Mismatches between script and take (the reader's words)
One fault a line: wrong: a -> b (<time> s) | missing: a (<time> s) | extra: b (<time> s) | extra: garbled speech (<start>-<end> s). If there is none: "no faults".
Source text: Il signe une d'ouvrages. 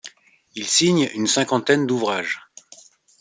extra: cinquantaine (1.3 s)